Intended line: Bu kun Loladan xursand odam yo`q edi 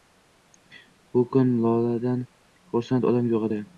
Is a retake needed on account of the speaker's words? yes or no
no